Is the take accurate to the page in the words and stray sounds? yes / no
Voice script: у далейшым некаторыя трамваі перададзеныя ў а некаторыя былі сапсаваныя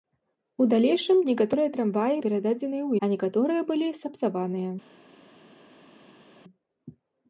yes